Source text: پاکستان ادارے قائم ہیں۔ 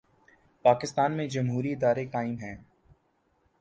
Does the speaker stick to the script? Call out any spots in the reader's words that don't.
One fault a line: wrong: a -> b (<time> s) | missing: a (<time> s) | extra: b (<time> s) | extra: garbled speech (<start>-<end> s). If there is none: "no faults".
extra: میں جمہوری (1.2 s)